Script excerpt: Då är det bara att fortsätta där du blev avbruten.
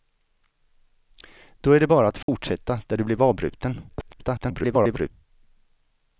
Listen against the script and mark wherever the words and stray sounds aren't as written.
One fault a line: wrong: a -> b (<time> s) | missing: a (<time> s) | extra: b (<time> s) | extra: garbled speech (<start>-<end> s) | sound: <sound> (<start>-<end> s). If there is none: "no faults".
sound: dropout (2.2-2.3 s)
extra: garbled speech (3.9-5.1 s)